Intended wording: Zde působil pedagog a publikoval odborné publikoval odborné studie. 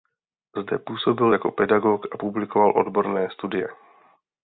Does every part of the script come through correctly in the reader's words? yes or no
no